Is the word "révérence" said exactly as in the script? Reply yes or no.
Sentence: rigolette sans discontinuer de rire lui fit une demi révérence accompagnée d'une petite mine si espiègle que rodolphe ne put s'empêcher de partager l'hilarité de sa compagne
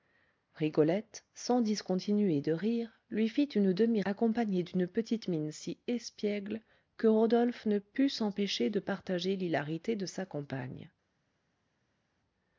no